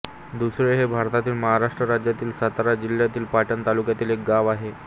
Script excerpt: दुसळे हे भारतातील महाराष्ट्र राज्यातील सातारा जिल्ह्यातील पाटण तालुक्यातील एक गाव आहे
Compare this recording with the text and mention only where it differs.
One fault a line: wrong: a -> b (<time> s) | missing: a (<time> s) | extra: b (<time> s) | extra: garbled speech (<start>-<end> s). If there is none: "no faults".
no faults